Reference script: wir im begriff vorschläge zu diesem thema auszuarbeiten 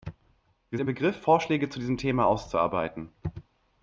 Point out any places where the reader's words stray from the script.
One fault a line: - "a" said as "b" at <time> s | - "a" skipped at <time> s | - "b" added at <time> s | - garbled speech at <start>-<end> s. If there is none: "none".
none